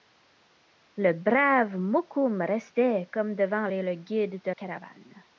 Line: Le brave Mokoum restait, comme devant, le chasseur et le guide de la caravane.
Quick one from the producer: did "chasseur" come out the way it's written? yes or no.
no